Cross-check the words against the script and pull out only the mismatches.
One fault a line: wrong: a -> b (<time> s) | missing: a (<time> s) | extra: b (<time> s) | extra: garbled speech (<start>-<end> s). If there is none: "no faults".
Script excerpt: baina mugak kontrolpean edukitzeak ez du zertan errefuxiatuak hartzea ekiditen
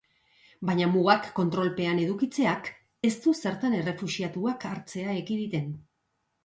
no faults